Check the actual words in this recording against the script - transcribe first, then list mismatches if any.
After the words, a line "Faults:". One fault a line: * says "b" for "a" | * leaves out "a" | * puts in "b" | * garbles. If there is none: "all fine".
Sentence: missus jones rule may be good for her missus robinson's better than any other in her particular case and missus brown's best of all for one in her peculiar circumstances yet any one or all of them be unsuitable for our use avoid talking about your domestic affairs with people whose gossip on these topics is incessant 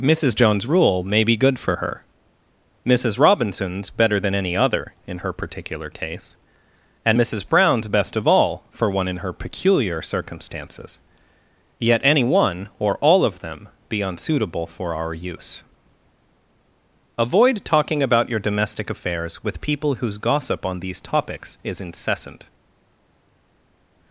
missus jones rule may be good for her missus robinson's better than any other in her particular case and missus brown's best of all for one in her peculiar circumstances yet any one or all of them be unsuitable for our use avoid talking about your domestic affairs with people whose gossip on these topics is incessant
Faults:
all fine